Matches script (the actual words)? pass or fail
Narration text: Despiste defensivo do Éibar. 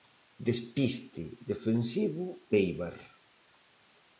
fail